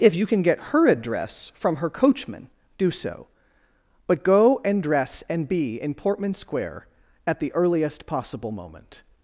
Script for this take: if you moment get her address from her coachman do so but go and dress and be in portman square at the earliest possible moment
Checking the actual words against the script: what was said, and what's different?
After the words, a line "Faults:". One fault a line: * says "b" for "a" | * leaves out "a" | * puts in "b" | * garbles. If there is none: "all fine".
if you can get her address from her coachman do so but go and dress and be in portman square at the earliest possible moment
Faults:
* says "can" for "moment"